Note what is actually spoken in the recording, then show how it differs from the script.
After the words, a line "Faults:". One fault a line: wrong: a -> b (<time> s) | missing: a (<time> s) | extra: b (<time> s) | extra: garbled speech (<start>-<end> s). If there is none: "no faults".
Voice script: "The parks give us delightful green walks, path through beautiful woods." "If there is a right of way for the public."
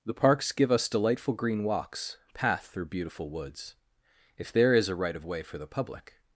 "The parks give us delightful green walks, path through beautiful woods." "If there is a right of way for the public."
Faults:
no faults